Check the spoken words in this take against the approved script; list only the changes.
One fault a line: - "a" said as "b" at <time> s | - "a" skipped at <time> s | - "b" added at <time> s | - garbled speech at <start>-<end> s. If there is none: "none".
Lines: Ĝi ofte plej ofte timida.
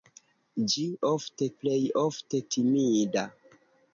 none